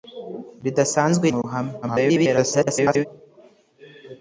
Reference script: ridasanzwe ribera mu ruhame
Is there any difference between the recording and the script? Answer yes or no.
yes